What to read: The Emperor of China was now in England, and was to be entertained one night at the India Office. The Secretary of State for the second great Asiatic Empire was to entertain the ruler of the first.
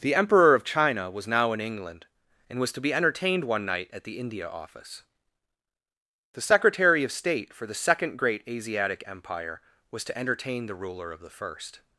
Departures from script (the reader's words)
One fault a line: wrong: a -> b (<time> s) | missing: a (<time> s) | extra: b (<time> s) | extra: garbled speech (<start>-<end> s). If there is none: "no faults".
no faults